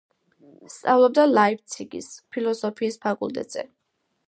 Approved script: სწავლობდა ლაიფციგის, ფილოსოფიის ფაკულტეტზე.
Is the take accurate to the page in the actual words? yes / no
yes